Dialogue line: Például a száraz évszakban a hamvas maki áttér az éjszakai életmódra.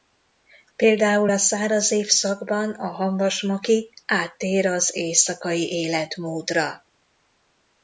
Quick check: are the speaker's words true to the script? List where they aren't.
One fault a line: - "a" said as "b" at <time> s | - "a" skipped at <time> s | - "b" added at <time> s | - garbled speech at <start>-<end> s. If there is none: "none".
none